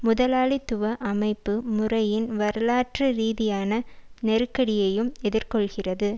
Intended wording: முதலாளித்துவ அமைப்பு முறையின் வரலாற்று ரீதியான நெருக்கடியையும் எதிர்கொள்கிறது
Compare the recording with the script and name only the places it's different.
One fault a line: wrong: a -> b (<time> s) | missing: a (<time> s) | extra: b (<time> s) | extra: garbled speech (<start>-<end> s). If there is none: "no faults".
no faults